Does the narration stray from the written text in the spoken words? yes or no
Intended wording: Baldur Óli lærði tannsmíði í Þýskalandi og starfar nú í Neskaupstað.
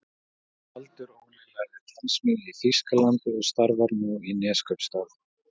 no